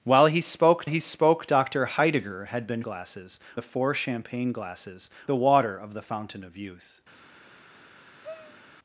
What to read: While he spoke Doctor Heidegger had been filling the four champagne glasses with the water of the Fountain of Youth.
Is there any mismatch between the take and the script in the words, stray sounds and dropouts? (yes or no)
yes